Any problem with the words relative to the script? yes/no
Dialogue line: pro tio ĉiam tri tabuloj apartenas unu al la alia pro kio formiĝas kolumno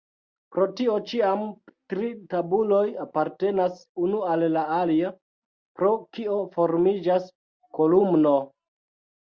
no